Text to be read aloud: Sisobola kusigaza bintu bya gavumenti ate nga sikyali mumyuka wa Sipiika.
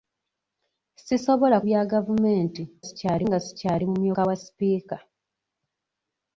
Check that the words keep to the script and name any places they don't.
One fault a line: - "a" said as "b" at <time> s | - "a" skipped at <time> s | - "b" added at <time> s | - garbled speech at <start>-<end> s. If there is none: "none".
- "kusigaza bintu" skipped at 1.6 s
- "ate" said as "sikyali" at 2.8 s